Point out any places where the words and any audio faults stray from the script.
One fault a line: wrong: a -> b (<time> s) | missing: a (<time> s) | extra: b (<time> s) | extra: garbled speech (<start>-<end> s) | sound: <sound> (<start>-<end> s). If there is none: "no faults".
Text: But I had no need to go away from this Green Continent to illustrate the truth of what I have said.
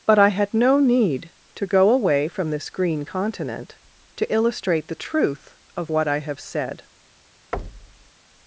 sound: thud (7.5-8.1 s)